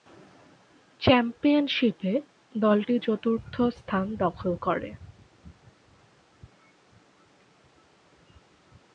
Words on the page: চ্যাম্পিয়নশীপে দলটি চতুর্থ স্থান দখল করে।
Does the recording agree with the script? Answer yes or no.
yes